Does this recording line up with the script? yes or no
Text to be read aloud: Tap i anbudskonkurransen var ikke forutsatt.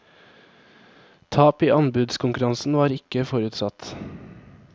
yes